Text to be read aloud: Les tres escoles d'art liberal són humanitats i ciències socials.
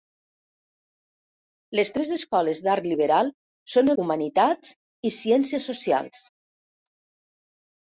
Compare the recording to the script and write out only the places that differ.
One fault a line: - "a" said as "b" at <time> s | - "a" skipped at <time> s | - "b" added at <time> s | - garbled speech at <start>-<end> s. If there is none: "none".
none